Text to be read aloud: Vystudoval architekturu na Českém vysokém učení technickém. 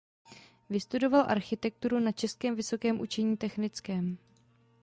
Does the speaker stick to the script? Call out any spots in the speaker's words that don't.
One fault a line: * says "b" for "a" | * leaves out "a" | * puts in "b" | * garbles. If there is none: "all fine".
all fine